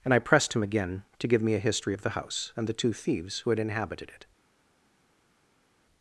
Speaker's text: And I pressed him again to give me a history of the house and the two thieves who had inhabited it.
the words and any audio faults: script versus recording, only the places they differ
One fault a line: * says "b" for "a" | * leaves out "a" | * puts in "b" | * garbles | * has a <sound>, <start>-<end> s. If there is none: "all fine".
all fine